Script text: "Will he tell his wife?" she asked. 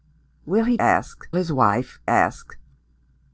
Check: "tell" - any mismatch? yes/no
yes